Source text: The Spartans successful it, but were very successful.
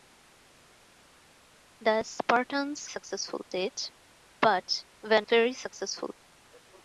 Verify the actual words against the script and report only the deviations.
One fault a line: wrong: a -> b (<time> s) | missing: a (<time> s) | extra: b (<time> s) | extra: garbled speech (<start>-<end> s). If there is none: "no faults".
no faults